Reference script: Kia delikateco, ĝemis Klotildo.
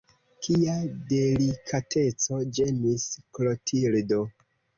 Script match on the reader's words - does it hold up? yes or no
yes